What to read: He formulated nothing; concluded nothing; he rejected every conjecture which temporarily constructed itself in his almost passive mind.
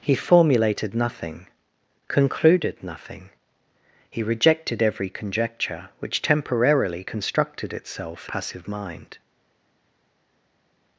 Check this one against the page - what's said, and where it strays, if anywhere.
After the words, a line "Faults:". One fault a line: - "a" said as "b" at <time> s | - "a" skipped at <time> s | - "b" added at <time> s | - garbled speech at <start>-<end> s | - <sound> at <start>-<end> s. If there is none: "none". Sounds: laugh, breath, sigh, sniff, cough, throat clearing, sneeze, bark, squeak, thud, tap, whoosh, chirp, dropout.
He formulated nothing; concluded nothing; he rejected every conjecture which temporarily constructed itself passive mind.
Faults:
- "in his almost" skipped at 8.3 s